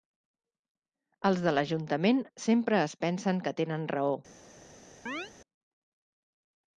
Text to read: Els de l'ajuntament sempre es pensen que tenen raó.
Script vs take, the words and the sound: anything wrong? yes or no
yes